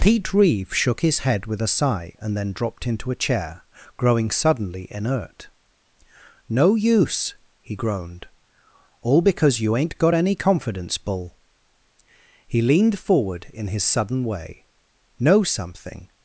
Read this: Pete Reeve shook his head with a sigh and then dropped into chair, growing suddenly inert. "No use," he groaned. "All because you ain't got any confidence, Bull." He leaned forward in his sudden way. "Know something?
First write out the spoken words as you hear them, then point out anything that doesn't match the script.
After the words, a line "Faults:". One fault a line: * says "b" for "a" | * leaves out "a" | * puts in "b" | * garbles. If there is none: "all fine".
Pete Reeve shook his head with a sigh and then dropped into a chair, growing suddenly inert. "No use," he groaned. "All because you ain't got any confidence, Bull." He leaned forward in his sudden way. "Know something?
Faults:
* puts in "a"